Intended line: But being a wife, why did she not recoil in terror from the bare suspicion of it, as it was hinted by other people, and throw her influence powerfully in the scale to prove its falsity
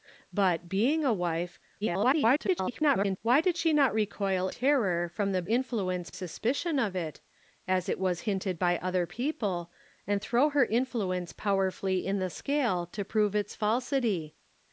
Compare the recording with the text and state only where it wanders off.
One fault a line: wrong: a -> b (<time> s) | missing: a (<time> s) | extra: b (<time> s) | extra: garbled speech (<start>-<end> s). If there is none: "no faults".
extra: garbled speech (1.8-3.2 s)
missing: in (4.5 s)
wrong: bare -> influence (5.4 s)